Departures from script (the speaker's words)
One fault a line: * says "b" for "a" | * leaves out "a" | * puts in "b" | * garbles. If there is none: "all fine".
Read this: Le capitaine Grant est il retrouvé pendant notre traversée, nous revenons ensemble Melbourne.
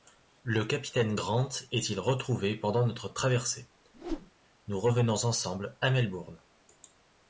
* puts in "à"